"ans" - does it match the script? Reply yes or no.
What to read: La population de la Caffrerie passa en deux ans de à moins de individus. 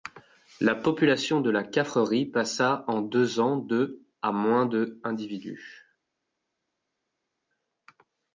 yes